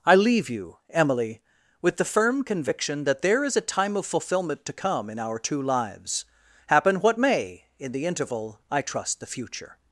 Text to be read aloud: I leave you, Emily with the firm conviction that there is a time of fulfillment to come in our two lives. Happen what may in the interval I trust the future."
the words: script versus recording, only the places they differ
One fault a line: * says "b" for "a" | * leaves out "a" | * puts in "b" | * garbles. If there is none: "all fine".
all fine